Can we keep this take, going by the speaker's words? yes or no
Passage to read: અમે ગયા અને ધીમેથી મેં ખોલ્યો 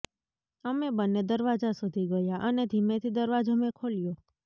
no